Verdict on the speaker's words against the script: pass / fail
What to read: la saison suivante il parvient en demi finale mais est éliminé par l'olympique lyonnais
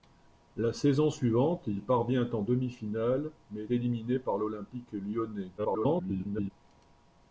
fail